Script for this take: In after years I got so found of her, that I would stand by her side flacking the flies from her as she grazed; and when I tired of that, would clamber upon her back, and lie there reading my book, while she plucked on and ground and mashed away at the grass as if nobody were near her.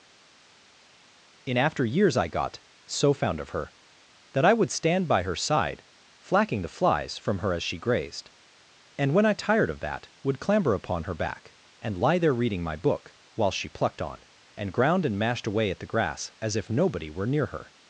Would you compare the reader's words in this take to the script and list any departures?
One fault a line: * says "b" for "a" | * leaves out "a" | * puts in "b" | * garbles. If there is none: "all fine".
all fine